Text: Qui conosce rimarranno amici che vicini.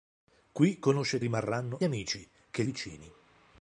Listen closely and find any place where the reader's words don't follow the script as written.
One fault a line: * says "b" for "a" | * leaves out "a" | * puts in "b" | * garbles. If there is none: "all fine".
all fine